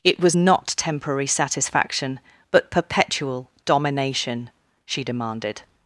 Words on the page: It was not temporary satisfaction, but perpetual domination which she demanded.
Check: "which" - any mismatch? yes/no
yes